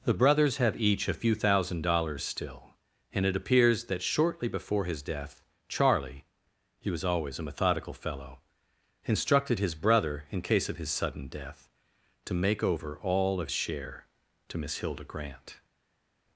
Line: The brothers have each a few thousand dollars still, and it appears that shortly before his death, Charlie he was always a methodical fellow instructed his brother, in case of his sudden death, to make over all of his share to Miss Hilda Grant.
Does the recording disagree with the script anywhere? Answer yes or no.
yes